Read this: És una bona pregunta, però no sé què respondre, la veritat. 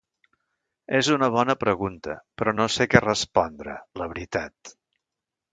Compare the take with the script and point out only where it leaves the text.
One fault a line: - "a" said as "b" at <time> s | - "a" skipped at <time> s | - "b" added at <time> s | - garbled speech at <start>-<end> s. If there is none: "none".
none